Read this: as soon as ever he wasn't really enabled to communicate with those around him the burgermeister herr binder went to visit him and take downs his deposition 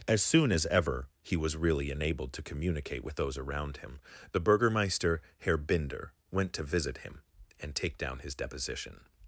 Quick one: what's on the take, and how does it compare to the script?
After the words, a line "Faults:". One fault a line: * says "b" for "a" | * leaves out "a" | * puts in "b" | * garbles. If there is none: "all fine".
as soon as ever he was really enabled to communicate with those around him the burgermeister herr binder went to visit him and take down his deposition
Faults:
* says "was" for "wasn't"
* says "down" for "downs"